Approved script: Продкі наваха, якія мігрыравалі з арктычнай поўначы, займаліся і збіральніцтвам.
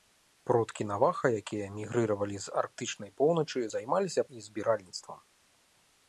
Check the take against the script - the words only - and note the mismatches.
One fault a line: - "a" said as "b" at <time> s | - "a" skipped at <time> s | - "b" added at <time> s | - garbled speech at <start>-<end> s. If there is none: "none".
none